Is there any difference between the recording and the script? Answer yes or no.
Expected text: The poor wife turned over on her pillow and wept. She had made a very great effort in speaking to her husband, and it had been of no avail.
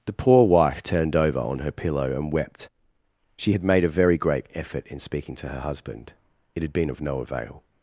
yes